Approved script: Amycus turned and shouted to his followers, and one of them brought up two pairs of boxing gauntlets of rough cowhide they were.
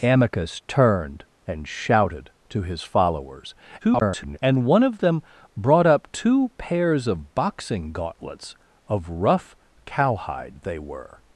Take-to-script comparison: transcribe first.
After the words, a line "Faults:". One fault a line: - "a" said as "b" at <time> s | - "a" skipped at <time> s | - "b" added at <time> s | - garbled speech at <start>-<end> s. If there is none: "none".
Amycus turned and shouted to his followers, [garbled] and one of them brought up two pairs of boxing gauntlets of rough cowhide they were.
Faults:
- garbled speech at 3.8-4.4 s